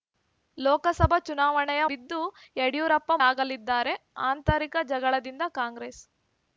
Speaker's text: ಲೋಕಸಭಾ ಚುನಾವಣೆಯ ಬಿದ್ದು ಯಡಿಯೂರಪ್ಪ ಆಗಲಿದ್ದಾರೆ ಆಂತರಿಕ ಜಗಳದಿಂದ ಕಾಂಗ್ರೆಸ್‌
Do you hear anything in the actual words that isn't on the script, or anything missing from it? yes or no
no